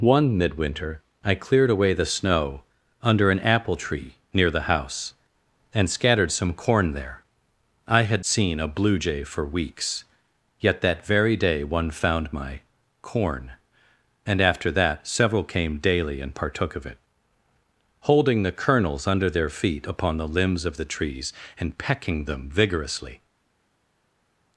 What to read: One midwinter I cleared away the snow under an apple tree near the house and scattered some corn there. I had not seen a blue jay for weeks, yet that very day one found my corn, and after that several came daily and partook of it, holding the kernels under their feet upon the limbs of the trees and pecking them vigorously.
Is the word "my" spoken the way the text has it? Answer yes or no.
yes